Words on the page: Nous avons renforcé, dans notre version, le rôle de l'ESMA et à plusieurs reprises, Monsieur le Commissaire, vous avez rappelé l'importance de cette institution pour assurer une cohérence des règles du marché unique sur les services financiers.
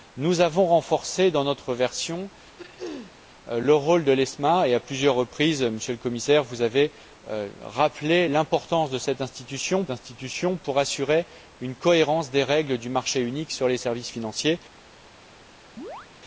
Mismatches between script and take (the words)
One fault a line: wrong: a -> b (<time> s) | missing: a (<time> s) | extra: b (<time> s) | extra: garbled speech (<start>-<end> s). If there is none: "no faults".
extra: institution (9.9 s)